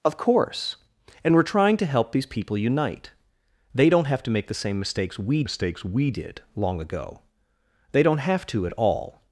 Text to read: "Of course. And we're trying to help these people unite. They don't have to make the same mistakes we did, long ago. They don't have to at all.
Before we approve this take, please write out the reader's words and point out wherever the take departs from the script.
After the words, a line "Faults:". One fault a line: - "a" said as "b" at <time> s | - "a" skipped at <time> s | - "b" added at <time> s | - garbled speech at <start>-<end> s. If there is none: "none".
"Of course. And we're trying to help these people unite. They don't have to make the same mistakes we mistakes we did, long ago. They don't have to at all.
Faults:
- "mistakes we" added at 5.4 s